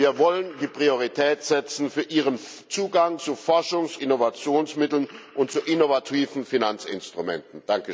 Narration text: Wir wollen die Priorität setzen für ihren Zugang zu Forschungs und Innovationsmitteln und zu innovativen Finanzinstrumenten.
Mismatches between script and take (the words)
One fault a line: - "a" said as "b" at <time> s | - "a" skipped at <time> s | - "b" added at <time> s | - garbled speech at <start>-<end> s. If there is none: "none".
- "und" skipped at 4.0 s